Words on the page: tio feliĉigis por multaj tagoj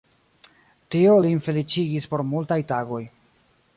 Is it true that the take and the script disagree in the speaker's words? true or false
true